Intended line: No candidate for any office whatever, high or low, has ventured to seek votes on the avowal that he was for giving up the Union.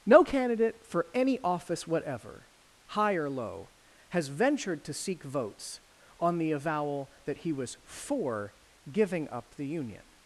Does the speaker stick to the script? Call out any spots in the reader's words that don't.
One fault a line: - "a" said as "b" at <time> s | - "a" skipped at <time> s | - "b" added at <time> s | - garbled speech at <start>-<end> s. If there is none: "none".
none